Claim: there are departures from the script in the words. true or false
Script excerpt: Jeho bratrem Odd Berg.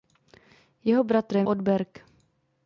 false